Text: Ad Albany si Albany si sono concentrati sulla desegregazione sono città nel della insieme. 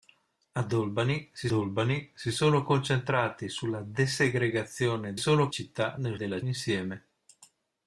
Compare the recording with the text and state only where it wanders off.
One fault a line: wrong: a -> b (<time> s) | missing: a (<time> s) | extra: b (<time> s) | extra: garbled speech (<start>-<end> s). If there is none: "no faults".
no faults